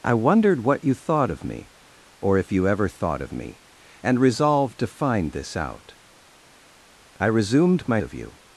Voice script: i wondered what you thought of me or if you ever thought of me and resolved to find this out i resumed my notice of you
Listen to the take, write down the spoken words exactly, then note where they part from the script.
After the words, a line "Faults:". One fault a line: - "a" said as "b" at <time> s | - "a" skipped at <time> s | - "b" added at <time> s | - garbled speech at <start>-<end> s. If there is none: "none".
i wondered what you thought of me or if you ever thought of me and resolved to find this out i resumed my of you
Faults:
- "notice" skipped at 8.0 s